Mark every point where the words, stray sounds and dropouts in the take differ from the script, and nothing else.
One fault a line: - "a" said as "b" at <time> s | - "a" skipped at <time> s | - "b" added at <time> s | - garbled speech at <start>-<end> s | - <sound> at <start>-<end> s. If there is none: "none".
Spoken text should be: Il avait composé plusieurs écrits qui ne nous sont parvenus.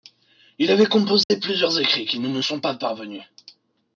- dropout at 1.2-1.3 s
- "pas" added at 2.6 s